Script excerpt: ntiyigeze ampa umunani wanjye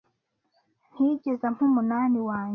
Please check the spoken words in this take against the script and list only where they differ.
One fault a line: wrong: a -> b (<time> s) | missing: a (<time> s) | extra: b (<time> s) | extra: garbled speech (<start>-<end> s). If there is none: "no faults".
no faults